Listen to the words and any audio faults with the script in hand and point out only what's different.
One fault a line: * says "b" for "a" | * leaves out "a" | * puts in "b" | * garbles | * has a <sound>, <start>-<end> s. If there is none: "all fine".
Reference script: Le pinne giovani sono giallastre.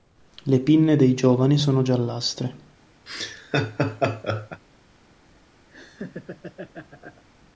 * puts in "dei"
* has a laugh, 3.1-4.6 s
* has a laugh, 5.7-7.2 s